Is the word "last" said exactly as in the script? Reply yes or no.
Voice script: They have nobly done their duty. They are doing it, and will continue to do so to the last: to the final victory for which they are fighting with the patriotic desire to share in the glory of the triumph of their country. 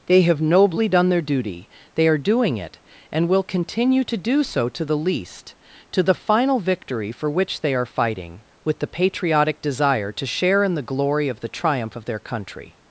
no